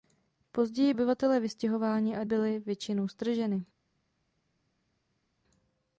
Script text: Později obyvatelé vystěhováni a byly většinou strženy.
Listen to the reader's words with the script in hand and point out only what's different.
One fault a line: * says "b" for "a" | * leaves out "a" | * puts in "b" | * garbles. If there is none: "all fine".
all fine